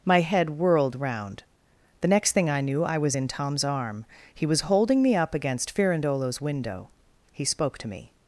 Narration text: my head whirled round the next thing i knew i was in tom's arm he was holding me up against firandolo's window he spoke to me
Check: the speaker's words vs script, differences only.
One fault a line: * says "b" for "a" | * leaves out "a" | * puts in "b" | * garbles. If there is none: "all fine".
all fine